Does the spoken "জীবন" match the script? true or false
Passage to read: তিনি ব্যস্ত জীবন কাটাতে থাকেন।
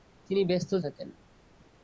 false